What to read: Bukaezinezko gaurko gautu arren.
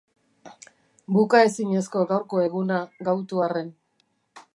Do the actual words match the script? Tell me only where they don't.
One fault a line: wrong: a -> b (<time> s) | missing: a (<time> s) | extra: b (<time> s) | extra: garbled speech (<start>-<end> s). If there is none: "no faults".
extra: eguna (2.5 s)